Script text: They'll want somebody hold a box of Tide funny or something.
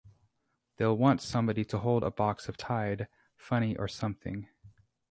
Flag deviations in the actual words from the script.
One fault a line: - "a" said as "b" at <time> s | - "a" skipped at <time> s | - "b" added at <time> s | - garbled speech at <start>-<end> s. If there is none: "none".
- "to" added at 1.6 s